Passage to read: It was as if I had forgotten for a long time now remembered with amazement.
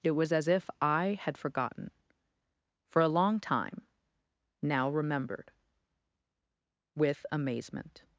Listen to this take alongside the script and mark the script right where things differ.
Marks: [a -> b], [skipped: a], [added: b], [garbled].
It was as if I had forgotten for a long time now remembered with amazement.